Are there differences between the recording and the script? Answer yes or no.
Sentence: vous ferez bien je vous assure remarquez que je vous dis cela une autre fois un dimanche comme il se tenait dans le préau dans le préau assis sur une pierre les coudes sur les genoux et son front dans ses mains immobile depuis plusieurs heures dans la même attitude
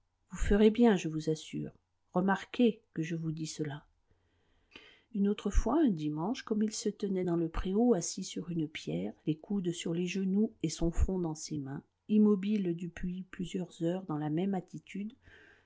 yes